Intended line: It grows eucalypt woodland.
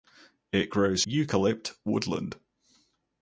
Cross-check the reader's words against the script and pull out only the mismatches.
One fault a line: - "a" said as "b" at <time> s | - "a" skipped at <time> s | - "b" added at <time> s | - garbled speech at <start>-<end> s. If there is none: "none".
none